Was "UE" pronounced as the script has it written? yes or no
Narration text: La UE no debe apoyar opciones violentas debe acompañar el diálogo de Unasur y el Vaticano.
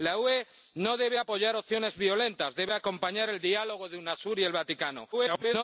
yes